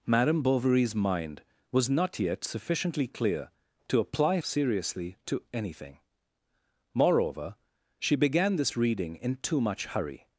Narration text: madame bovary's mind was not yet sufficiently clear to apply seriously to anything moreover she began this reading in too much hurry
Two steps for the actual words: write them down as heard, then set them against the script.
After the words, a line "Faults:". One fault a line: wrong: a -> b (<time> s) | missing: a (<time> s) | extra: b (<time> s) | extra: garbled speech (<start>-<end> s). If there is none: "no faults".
madame bovary's mind was not yet sufficiently clear to apply seriously to anything moreover she began this reading in too much hurry
Faults:
no faults